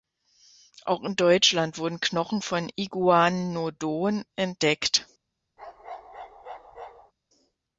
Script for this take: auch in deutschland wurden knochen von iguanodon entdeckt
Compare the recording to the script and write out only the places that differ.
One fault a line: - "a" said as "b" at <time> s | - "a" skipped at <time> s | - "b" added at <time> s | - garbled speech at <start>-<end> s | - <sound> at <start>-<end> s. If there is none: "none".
- bark at 5.6-7.1 s